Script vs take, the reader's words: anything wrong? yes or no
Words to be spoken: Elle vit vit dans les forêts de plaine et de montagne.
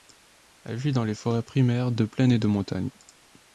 yes